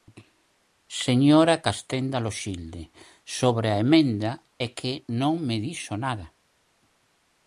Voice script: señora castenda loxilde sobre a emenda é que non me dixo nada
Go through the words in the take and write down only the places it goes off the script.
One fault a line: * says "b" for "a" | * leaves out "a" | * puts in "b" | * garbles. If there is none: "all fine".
all fine